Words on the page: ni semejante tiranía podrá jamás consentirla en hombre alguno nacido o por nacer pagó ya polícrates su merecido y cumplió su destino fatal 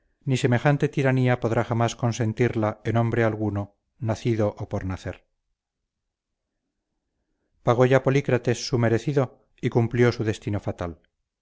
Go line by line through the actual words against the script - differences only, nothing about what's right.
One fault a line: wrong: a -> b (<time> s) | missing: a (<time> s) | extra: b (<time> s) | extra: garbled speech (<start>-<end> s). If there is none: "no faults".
no faults